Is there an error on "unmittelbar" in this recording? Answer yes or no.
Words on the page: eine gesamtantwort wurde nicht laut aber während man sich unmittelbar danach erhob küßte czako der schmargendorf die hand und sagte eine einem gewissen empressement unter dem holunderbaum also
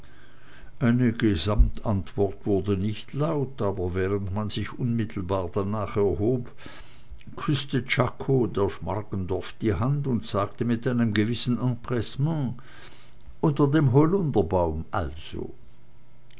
no